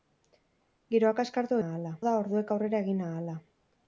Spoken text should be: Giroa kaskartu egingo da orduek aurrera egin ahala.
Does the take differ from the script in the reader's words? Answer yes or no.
yes